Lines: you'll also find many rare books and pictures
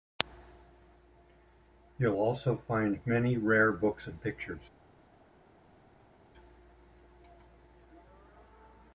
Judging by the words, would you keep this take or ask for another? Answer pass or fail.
pass